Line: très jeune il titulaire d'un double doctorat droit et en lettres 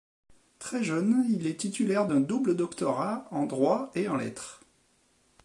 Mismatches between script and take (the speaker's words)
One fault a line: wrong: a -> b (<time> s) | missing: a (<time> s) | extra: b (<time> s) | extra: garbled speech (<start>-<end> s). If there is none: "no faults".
extra: est (1.4 s)
extra: en (3.3 s)